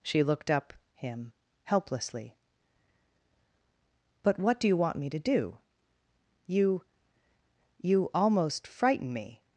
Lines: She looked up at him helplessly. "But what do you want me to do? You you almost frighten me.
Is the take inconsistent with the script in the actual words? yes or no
yes